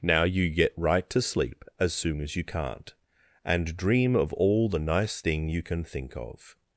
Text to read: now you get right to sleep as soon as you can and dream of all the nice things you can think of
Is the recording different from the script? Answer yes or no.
yes